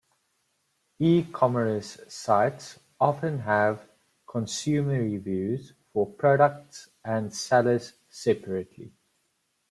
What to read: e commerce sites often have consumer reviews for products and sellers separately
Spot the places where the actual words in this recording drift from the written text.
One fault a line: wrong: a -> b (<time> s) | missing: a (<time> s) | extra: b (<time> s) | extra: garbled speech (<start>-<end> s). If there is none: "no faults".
no faults